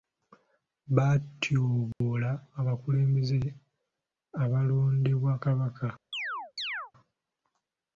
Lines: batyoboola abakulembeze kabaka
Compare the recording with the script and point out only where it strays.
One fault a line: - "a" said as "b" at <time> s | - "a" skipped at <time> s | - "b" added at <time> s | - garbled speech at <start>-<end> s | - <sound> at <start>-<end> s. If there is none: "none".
- dropout at 1.9-2.0 s
- "abalondebwa" added at 4.4 s
- chirp at 6.1-6.9 s